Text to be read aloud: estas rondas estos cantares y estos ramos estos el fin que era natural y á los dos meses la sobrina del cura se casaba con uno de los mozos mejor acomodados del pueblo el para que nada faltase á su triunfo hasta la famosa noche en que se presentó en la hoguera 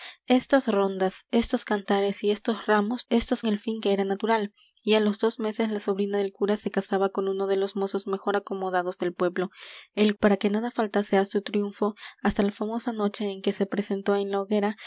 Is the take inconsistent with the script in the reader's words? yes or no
no